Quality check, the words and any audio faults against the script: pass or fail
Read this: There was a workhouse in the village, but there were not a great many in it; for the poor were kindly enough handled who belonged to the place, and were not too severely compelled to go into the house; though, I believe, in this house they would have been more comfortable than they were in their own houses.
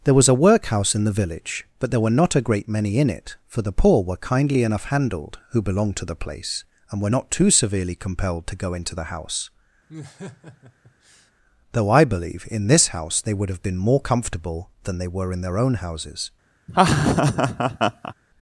fail